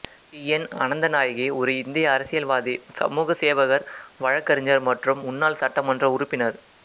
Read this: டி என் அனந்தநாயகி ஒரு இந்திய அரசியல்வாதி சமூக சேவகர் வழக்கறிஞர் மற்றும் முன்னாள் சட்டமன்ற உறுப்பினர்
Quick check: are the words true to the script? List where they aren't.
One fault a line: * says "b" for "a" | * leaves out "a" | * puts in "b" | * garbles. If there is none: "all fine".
all fine